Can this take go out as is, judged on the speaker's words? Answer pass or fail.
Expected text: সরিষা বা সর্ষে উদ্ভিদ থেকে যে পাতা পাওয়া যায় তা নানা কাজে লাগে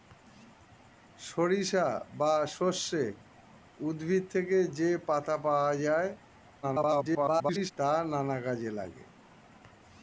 fail